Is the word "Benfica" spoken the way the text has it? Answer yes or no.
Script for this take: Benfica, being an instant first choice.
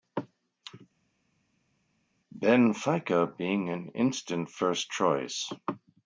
yes